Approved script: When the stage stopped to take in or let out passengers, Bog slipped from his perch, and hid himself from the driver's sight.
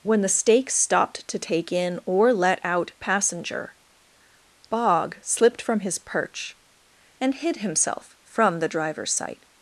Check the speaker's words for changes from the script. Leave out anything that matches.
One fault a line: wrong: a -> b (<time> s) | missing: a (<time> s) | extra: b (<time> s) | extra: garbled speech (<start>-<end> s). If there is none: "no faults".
wrong: stage -> stake (0.3 s)
wrong: passengers -> passenger (3.0 s)